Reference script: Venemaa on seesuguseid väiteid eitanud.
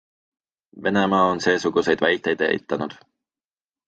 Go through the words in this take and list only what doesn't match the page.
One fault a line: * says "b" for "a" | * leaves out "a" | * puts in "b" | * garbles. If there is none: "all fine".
all fine